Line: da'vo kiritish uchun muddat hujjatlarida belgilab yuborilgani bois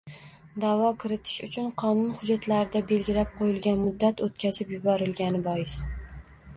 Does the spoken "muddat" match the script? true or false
false